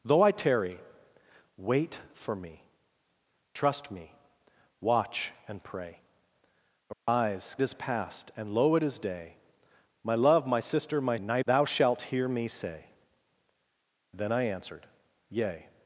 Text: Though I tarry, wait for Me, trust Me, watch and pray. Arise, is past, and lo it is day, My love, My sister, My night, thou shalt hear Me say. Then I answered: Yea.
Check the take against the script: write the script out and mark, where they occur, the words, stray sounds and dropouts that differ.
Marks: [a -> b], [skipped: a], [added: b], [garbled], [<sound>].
Though I tarry, wait for Me, trust Me, watch and pray. Arise, [dropout] is past, and lo it is day, My love, My sister, My night, thou shalt hear Me say. Then I answered: Yea.